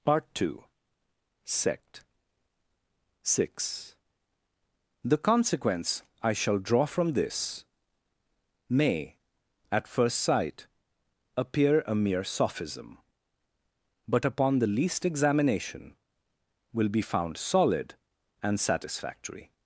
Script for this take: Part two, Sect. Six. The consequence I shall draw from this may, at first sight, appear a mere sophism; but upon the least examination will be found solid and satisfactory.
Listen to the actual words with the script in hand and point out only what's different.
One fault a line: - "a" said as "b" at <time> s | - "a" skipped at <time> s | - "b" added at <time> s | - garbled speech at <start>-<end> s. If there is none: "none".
none